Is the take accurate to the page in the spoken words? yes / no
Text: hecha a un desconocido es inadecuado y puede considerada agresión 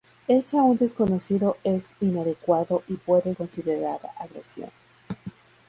yes